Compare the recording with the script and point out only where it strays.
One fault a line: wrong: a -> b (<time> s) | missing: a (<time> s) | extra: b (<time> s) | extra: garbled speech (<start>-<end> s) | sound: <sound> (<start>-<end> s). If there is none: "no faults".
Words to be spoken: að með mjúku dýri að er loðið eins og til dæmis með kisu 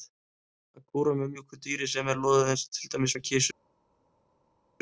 extra: kúra (0.9 s)
wrong: að -> sem (1.9 s)